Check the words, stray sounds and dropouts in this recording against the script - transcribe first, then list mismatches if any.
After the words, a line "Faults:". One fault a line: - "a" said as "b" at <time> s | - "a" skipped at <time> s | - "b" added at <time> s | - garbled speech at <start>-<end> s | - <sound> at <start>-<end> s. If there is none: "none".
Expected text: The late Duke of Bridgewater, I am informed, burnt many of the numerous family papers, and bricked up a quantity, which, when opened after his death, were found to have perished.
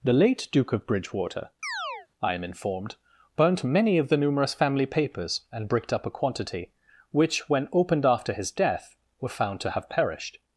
The late Duke of Bridgewater, I am informed, burnt many of the numerous family papers, and bricked up a quantity, which, when opened after his death, were found to have perished.
Faults:
- chirp at 1.6-2.1 s